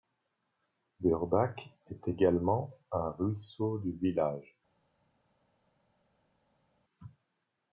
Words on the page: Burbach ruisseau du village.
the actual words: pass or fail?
fail